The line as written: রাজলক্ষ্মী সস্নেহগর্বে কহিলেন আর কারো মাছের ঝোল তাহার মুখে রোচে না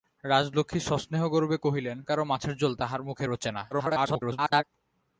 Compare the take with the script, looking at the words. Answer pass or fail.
fail